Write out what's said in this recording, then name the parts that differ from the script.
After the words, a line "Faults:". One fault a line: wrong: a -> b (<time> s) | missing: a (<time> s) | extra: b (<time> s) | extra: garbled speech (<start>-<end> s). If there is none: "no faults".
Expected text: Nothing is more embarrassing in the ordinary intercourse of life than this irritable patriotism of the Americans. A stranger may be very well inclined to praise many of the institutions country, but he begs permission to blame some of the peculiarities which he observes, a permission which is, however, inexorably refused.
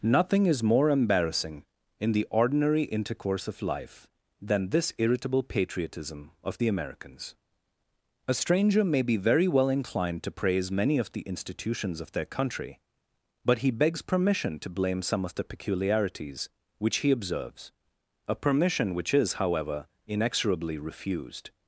Nothing is more embarrassing in the ordinary intercourse of life than this irritable patriotism of the Americans. A stranger may be very well inclined to praise many of the institutions of their country, but he begs permission to blame some of the peculiarities which he observes, a permission which is, however, inexorably refused.
Faults:
extra: of their (12.0 s)